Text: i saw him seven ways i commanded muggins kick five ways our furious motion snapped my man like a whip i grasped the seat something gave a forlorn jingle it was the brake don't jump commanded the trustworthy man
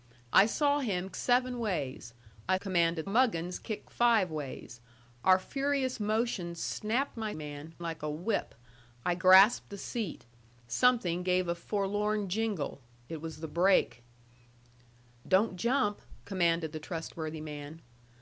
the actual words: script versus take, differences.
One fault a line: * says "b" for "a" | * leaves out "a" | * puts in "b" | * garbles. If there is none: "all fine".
all fine